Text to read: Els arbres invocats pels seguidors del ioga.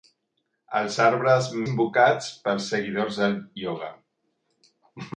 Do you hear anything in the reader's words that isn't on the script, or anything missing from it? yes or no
no